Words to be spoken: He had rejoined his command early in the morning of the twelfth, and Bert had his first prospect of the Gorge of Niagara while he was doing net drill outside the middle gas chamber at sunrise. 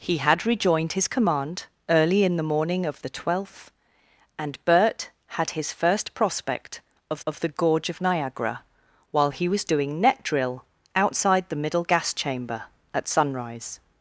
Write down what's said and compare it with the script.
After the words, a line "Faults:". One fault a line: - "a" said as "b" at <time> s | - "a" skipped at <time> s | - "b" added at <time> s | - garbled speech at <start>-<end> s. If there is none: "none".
He had rejoined his command early in the morning of the twelfth, and Bert had his first prospect of of the Gorge of Niagara while he was doing net drill outside the middle gas chamber at sunrise.
Faults:
- "of" added at 7.3 s